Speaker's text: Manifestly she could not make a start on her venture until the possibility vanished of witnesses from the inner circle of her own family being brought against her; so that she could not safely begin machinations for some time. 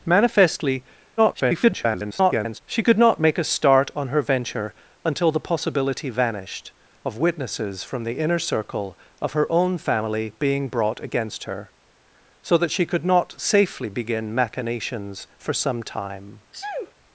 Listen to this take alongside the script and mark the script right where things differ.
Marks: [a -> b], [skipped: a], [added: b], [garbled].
Manifestly [garbled] she could not make a start on her venture until the possibility vanished of witnesses from the inner circle of her own family being brought against her; so that she could not safely begin machinations for some time.